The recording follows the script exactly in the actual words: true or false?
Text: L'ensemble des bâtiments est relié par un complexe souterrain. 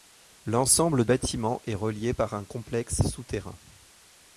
false